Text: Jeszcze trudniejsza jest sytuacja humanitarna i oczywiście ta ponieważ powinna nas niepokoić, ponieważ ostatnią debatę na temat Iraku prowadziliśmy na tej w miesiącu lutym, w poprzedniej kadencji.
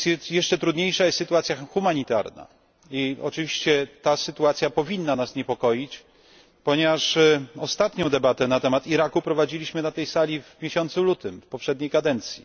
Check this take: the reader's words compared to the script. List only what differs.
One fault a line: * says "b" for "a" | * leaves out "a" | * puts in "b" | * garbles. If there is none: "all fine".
* says "sytuacja" for "ponieważ"
* puts in "sali"